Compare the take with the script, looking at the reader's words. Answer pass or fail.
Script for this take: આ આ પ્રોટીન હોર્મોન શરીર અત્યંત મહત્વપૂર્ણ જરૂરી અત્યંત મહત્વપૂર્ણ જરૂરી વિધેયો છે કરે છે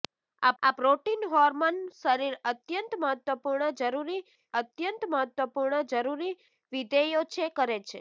pass